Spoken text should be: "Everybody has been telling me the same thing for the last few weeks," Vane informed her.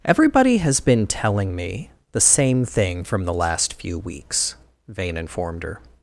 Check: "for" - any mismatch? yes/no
yes